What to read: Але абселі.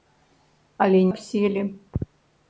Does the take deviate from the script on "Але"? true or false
false